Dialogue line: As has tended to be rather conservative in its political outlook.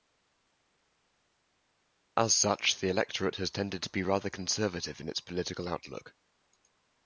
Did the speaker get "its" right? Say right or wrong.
right